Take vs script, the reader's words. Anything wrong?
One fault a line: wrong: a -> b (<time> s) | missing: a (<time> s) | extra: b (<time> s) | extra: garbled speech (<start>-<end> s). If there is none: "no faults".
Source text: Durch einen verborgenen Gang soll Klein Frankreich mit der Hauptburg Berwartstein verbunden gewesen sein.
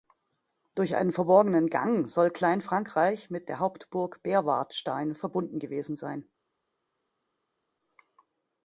no faults